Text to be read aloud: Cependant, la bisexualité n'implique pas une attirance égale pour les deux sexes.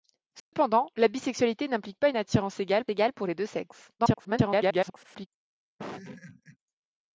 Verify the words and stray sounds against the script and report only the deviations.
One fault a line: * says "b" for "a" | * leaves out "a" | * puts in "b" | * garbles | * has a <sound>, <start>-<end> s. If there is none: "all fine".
* has a dropout, 0.4-0.5 s
* puts in "égale"
* garbles
* has a laugh, 5.8-6.6 s